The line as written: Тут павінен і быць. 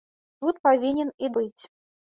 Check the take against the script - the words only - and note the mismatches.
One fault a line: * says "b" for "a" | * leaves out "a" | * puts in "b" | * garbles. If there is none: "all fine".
all fine